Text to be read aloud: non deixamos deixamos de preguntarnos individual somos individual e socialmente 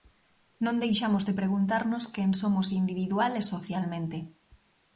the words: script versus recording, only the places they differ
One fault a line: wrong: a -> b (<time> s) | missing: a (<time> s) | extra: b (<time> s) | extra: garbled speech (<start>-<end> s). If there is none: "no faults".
missing: deixamos (1.2 s)
wrong: individual -> quen (2.1 s)